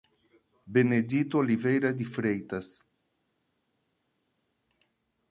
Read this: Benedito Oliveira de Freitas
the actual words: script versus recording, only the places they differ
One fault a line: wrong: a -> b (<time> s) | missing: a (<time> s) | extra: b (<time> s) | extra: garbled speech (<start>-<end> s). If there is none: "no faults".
no faults